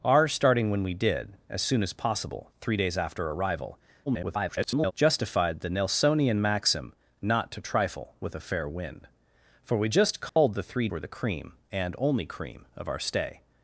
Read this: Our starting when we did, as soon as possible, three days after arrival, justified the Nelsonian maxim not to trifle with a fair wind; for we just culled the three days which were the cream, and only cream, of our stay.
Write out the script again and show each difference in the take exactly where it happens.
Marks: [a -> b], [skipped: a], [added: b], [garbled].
Our starting when we did, as soon as possible, three days after arrival, [garbled] justified the Nelsonian maxim not to trifle with a fair wind; for we just culled the three [skipped: days which] were the cream, and only cream, of our stay.